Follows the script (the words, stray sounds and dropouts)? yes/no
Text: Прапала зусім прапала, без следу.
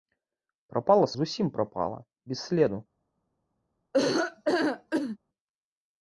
no